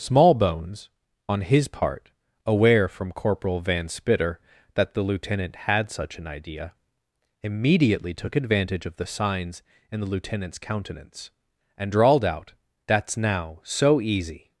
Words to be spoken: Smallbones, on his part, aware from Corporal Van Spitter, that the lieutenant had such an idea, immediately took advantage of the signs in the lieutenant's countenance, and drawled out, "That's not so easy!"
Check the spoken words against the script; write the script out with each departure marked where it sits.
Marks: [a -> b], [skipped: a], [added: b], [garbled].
Smallbones, on his part, aware from Corporal Van Spitter, that the lieutenant had such an idea, immediately took advantage of the signs in the lieutenant's countenance, and drawled out, "That's [not -> now] so easy!"